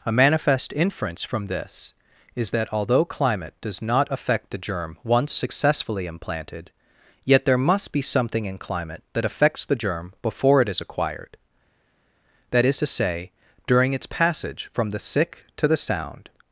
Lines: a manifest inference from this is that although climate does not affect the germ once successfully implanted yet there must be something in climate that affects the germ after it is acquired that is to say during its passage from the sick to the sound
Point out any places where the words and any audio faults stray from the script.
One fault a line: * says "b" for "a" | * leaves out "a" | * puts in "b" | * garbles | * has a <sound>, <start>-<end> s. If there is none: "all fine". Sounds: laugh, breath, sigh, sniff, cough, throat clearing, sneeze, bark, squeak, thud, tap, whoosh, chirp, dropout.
* says "before" for "after"